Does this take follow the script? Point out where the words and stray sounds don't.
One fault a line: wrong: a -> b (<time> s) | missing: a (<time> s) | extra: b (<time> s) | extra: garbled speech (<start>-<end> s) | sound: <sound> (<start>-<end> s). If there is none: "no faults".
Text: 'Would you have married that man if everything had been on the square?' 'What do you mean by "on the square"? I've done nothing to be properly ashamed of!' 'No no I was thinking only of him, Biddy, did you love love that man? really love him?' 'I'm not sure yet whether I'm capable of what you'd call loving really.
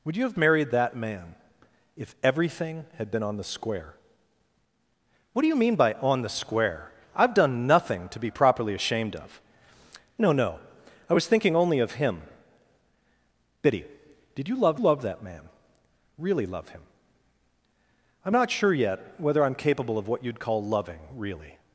no faults